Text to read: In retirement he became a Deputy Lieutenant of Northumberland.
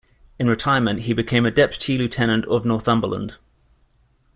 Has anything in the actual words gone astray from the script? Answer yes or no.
no